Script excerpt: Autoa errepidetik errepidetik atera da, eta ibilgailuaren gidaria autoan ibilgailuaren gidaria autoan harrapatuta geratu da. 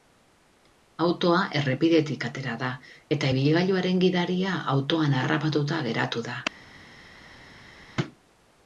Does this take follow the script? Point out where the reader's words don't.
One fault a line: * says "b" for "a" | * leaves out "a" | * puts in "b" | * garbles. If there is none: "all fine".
* leaves out "errepidetik"
* leaves out "ibilgailuaren gidaria autoan"